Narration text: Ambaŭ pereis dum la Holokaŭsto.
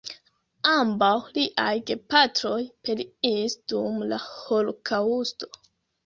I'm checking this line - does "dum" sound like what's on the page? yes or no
yes